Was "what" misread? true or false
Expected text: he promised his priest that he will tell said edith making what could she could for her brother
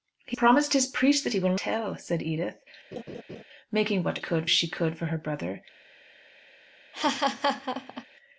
false